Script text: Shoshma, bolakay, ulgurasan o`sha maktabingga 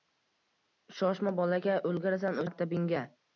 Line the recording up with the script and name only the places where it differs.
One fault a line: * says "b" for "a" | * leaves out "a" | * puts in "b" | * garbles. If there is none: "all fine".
* leaves out "o`sha"